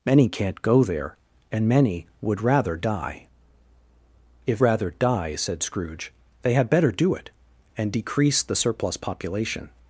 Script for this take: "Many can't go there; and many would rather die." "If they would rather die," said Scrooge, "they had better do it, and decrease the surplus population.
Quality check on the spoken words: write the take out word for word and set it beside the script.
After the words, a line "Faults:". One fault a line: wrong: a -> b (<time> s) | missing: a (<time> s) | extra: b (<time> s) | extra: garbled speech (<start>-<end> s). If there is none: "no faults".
"Many can't go there; and many would rather die." "If rather die," said Scrooge, "they had better do it, and decrease the surplus population.
Faults:
missing: they would (4.6 s)